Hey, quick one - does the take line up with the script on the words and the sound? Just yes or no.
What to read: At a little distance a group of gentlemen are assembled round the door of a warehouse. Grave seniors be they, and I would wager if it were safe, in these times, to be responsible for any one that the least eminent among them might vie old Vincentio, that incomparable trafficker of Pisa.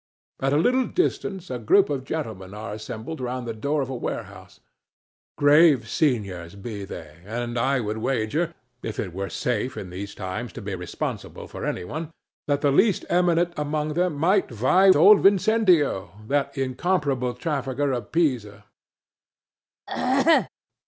no